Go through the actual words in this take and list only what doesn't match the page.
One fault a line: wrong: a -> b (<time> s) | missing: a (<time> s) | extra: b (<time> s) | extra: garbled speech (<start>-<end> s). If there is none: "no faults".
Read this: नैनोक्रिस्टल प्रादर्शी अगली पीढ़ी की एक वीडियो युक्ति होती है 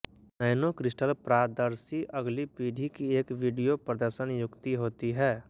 extra: प्रदर्शन (3.8 s)